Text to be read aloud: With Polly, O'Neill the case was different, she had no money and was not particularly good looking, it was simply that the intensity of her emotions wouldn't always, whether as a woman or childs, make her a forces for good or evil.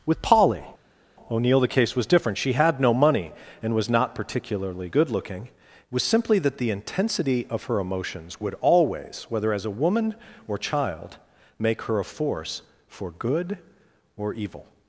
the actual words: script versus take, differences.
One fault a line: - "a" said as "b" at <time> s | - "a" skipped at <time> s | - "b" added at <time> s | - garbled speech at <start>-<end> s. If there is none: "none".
- "wouldn't" said as "would" at 8.4 s
- "childs" said as "child" at 10.6 s
- "forces" said as "force" at 12.1 s